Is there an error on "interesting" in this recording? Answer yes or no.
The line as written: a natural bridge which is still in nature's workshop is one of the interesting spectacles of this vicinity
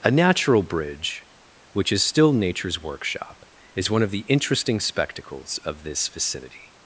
no